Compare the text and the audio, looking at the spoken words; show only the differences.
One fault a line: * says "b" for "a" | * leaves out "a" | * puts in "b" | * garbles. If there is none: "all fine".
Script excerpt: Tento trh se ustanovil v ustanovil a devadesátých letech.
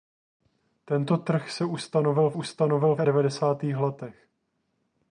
all fine